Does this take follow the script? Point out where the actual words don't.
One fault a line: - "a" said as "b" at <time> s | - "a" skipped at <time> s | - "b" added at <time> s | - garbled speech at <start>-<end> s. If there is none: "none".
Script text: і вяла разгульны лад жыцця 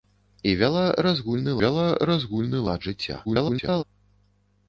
- "вяла разгульны" added at 1.6 s
- garbled speech at 3.2-3.8 s